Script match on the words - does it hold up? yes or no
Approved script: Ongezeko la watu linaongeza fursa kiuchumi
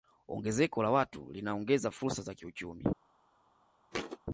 no